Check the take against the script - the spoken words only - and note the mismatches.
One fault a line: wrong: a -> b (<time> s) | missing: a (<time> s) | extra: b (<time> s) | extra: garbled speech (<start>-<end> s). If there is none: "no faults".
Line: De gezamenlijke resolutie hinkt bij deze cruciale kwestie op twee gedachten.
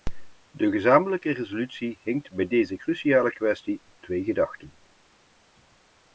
no faults